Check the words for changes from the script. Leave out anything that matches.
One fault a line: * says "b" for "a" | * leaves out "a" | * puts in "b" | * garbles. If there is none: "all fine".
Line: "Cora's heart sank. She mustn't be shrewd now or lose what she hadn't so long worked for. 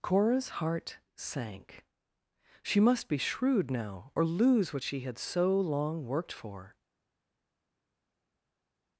* says "must" for "mustn't"
* says "had" for "hadn't"